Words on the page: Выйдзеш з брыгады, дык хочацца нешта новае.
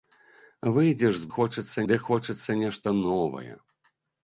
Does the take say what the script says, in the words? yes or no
no